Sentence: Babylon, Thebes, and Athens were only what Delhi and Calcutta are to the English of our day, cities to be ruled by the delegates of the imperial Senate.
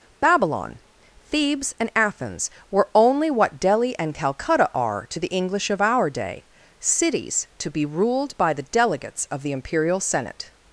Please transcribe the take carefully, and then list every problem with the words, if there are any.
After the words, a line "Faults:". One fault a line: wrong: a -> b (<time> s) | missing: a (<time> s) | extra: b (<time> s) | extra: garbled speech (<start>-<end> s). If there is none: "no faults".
Babylon, Thebes, and Athens were only what Delhi and Calcutta are to the English of our day, cities to be ruled by the delegates of the imperial Senate.
Faults:
no faults